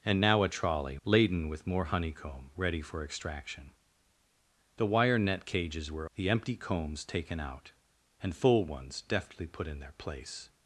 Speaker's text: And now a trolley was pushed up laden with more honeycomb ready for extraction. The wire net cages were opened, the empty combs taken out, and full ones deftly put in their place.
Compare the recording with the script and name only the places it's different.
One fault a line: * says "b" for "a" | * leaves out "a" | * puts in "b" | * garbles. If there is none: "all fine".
* leaves out "was pushed up"
* leaves out "opened"